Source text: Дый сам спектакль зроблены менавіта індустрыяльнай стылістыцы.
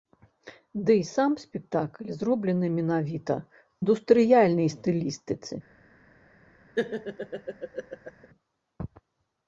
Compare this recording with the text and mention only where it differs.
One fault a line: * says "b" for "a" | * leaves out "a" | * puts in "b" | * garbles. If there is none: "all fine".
all fine